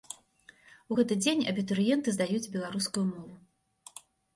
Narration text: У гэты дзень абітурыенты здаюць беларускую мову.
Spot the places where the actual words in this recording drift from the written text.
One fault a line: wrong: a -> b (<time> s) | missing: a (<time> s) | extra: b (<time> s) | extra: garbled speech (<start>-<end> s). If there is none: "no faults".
no faults